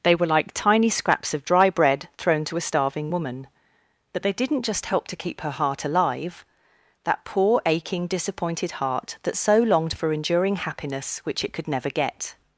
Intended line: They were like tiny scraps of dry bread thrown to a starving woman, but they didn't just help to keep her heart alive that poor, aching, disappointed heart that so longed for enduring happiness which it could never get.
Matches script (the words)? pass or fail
pass